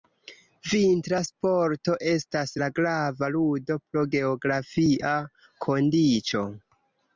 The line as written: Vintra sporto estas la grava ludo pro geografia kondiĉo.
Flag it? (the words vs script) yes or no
no